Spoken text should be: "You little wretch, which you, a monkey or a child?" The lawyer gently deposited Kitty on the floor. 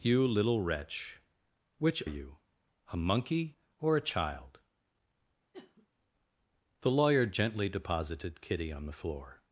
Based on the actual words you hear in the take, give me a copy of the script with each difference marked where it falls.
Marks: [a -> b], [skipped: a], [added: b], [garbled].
"You little wretch, which you, a monkey or a child?" The lawyer gently deposited Kitty on the floor.